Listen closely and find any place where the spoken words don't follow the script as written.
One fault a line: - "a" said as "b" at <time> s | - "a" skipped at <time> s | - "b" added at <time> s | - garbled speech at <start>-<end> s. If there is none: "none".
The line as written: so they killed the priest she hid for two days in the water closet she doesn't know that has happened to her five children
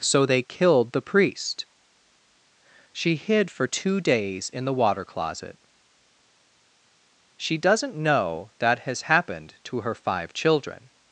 none